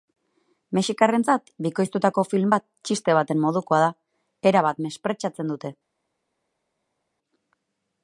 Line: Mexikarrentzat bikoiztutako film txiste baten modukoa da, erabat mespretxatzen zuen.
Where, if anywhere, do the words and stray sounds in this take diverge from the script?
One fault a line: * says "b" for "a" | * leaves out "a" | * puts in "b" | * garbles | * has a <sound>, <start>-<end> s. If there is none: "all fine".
* puts in "bat"
* says "dute" for "zuen"